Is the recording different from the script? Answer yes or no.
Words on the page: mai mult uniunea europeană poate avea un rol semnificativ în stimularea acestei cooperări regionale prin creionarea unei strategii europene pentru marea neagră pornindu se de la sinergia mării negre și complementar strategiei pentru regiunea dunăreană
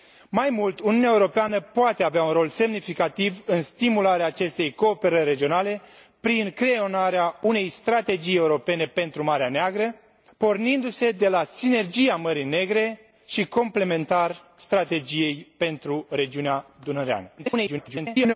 yes